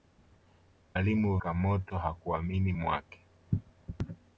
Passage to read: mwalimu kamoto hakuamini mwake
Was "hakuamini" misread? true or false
false